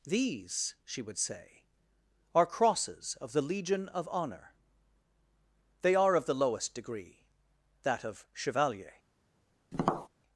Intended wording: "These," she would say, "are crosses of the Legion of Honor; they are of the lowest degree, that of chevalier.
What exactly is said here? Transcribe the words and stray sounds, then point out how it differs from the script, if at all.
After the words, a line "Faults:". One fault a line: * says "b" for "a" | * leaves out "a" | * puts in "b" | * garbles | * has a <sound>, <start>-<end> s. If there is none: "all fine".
"These," she would say, "are crosses of the Legion of Honor; they are of the lowest degree, that of chevalier.
Faults:
* has a tap, 9.7-10.1 s